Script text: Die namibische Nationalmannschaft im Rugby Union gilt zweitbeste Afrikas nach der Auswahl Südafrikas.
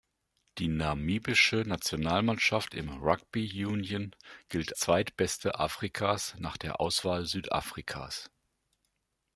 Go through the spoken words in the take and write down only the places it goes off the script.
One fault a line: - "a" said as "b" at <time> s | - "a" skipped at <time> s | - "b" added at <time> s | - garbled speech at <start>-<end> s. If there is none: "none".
none